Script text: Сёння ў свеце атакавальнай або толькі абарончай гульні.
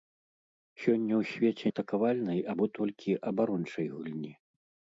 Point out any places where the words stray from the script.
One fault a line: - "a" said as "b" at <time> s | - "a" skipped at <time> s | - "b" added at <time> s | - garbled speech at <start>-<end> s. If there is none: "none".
none